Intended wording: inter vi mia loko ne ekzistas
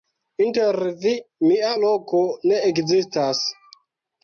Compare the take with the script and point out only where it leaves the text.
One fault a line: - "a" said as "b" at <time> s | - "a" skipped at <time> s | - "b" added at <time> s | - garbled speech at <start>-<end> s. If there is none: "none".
none